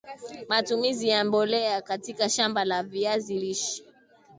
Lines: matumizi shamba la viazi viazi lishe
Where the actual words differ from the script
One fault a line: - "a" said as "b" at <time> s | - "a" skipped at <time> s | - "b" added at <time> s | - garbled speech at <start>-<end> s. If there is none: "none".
- "ya mbolea katika" added at 1.1 s
- "viazi" skipped at 3.4 s